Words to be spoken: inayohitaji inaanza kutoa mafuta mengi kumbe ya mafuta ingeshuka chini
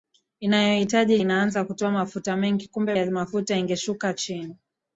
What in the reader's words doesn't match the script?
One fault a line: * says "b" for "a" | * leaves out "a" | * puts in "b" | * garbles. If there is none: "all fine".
all fine